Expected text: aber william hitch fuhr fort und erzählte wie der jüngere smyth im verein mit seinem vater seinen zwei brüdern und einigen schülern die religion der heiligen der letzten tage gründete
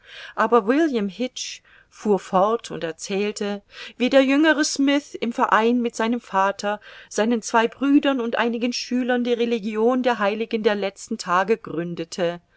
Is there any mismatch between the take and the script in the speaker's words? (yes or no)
no